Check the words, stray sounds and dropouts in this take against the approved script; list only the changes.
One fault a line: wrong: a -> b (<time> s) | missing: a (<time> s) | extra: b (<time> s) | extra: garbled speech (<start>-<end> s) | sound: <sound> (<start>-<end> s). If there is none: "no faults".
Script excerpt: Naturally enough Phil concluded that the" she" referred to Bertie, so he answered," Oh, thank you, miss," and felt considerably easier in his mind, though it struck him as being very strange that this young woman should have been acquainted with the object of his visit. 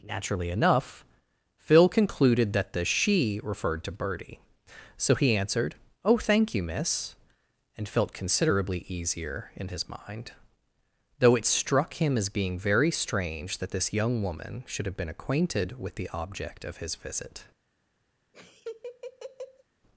sound: laugh (18.3-19.6 s)